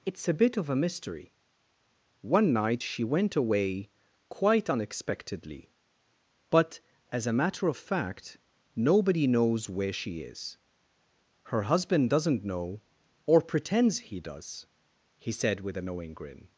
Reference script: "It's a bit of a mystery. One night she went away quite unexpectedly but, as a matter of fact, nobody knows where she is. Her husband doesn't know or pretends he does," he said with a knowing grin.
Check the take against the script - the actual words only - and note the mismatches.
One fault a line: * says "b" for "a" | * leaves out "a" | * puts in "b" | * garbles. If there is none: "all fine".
all fine